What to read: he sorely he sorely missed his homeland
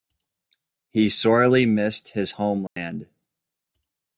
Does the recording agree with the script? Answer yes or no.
no